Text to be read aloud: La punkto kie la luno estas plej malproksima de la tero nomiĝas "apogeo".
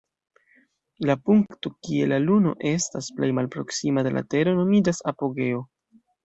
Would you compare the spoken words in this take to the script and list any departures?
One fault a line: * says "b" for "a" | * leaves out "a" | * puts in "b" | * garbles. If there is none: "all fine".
all fine